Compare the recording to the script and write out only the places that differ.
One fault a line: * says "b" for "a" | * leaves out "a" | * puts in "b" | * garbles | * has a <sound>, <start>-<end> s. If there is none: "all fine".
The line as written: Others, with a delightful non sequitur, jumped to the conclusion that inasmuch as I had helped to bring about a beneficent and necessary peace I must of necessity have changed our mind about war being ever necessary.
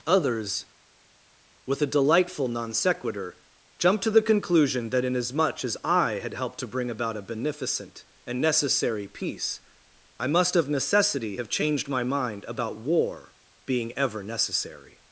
* says "my" for "our"